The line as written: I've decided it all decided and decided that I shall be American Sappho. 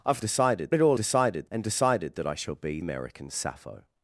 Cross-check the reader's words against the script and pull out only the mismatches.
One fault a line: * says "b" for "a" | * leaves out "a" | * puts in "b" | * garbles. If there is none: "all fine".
all fine